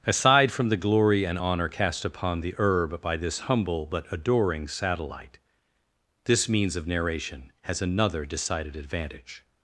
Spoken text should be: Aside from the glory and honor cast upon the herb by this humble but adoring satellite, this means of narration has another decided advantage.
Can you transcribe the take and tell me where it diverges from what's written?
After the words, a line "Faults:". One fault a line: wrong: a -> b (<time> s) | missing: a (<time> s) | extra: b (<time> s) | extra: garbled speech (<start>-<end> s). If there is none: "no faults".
Aside from the glory and honor cast upon the herb by this humble but adoring satellite, this means of narration has another decided advantage.
Faults:
no faults